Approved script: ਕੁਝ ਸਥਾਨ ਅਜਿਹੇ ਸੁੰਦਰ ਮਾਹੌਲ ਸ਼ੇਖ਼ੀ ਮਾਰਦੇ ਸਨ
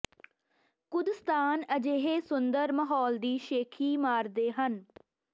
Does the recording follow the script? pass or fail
fail